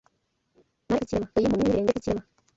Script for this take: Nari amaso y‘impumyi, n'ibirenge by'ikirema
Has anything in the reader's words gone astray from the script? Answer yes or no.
yes